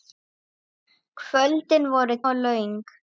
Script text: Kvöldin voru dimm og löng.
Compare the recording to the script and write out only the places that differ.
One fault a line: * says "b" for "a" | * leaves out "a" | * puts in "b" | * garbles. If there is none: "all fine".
* leaves out "dimm"